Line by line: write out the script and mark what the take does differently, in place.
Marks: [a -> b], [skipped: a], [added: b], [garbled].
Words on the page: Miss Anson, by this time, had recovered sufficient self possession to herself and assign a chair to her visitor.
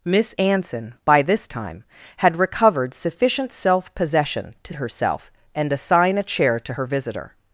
Miss Anson, by this time, had recovered sufficient self possession to herself and assign a chair to her visitor.